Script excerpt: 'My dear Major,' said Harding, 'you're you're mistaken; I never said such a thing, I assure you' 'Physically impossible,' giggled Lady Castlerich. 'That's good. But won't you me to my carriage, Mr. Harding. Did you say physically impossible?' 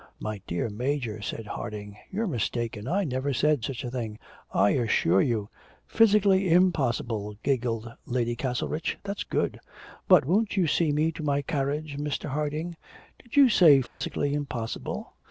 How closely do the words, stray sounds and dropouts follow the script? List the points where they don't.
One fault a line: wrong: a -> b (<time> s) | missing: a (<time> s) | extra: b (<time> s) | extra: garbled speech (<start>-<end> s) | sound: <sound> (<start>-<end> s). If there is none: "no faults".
missing: you're (2.2 s)
extra: see (10.7 s)
sound: dropout (13.9-14.0 s)